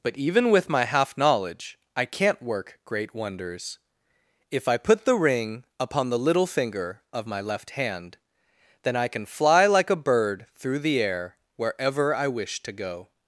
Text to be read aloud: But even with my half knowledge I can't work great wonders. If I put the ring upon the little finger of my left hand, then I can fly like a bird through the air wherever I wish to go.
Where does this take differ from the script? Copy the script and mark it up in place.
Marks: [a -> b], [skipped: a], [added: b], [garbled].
But even with my half knowledge I can't work great wonders. If I put the ring upon the little finger of my left hand, then I can fly like a bird through the air wherever I wish to go.